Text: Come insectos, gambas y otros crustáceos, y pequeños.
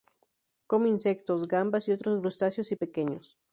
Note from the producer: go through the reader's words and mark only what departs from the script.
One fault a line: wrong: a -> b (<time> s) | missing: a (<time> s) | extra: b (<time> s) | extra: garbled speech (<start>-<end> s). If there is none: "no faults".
no faults